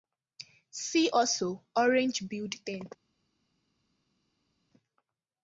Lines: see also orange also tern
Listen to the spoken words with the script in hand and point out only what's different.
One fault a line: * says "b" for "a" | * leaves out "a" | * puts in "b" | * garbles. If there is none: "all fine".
* says "billed" for "also"